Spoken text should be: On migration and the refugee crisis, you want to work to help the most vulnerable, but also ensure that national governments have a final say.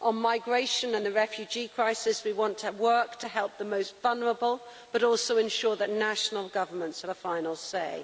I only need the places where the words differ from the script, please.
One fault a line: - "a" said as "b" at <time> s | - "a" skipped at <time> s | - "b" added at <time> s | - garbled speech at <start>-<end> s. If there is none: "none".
- "you" said as "we" at 2.2 s